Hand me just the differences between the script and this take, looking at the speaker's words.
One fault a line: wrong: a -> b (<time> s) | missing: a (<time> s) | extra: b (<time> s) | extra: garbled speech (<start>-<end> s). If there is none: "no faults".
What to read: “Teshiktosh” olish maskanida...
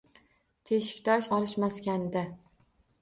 no faults